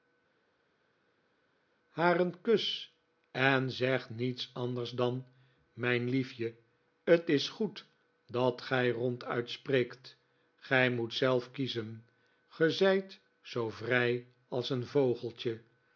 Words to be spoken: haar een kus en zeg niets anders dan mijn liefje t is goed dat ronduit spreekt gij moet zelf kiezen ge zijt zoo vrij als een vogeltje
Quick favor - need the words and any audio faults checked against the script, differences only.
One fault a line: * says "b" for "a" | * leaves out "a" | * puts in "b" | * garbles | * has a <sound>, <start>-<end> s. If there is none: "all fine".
* puts in "gij"